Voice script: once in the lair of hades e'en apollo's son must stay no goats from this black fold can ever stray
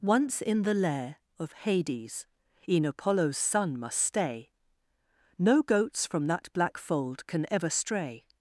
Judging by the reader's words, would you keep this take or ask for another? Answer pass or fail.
fail